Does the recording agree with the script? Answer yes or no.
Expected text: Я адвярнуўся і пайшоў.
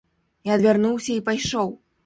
yes